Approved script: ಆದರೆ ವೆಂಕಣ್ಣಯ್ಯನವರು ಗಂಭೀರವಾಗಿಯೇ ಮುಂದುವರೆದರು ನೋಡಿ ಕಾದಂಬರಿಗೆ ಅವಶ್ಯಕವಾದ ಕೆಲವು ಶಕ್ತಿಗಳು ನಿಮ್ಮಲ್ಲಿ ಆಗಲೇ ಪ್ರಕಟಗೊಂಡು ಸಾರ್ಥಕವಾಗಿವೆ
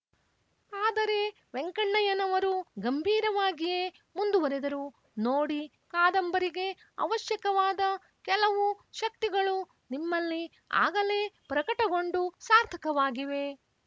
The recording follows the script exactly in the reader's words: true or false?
true